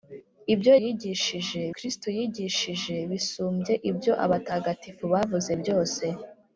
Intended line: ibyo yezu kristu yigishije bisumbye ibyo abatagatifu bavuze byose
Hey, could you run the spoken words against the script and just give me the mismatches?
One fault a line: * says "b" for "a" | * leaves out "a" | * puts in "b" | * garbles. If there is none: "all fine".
* says "yigishije" for "yezu"